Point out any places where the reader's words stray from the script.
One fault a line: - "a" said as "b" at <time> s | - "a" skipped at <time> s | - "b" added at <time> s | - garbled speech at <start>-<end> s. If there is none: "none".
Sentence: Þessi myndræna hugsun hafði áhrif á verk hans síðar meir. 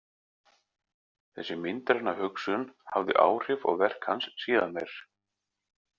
none